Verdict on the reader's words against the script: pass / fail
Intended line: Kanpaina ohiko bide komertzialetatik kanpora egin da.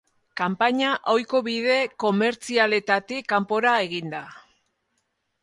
pass